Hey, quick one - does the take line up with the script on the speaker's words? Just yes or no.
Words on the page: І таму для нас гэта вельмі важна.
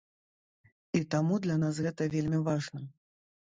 yes